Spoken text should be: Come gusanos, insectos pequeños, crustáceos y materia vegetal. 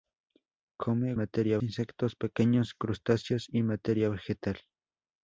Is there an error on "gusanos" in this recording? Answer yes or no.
yes